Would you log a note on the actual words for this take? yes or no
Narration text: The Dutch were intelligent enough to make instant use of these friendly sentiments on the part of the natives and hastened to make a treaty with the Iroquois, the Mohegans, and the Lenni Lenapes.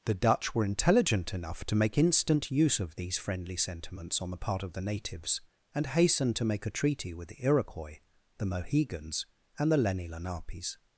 no